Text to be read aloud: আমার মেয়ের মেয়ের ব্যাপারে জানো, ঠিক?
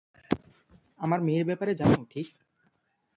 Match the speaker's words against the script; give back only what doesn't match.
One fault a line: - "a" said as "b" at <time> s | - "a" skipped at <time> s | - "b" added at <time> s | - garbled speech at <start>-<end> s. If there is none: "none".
- "মেয়ের" skipped at 1.4 s